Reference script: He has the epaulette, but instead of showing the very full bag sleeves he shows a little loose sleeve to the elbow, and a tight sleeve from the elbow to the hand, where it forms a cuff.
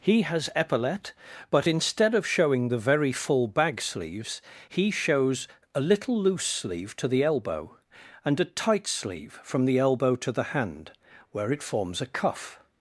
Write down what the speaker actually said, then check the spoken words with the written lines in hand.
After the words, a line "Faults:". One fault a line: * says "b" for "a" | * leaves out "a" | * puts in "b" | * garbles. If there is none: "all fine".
He has epaulette, but instead of showing the very full bag sleeves he shows a little loose sleeve to the elbow, and a tight sleeve from the elbow to the hand, where it forms a cuff.
Faults:
* leaves out "the"